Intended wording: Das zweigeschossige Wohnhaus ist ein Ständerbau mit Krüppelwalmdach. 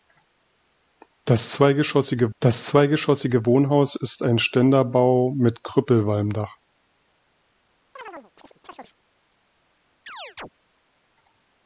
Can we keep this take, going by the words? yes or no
no